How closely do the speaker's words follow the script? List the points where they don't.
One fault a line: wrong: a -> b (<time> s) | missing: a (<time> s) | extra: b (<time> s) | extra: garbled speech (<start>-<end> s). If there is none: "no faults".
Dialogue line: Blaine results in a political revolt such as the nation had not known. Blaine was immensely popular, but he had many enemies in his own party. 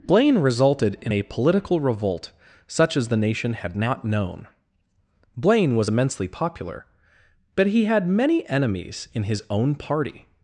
wrong: results -> resulted (0.4 s)